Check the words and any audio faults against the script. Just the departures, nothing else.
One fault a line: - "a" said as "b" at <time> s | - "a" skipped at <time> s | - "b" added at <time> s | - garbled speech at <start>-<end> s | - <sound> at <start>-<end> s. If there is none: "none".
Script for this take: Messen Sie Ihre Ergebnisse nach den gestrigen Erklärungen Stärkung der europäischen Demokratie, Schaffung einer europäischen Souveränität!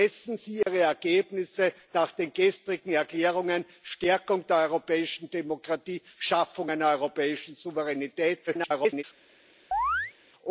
- dropout at 0.6-0.7 s
- garbled speech at 8.5-9.0 s
- chirp at 9.7-10.1 s